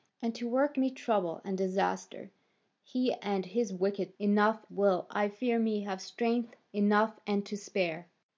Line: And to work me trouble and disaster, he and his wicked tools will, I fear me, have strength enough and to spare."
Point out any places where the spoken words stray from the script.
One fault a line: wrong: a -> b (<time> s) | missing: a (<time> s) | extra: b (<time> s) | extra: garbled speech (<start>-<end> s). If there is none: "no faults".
wrong: tools -> enough (4.2 s)